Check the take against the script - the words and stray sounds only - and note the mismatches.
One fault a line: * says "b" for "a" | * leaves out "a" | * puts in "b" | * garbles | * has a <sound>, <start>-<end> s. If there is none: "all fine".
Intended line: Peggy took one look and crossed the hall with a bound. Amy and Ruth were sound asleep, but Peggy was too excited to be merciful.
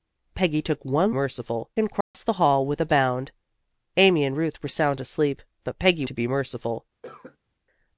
* says "merciful" for "look"
* has a dropout, 2.0-2.1 s
* leaves out "was too excited"
* has a cough, 7.0-7.4 s